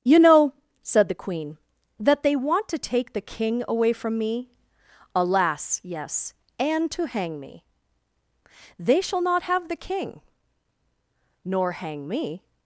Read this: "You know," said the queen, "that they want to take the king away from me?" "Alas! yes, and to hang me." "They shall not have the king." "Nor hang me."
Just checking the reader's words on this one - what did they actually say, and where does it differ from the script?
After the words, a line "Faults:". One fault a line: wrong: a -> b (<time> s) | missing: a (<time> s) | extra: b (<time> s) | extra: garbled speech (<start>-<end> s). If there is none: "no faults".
"You know," said the queen, "that they want to take the king away from me?" "Alas! yes, and to hang me." "They shall not have the king." "Nor hang me."
Faults:
no faults